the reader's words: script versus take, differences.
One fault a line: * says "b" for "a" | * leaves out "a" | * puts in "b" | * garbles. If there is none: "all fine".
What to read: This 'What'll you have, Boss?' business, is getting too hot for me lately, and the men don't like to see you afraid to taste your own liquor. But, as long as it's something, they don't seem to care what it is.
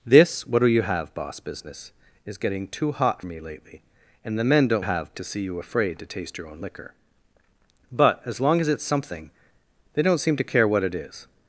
* leaves out "for"
* says "have" for "like"